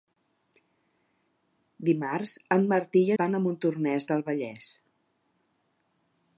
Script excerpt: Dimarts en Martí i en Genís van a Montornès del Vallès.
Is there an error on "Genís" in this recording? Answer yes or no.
yes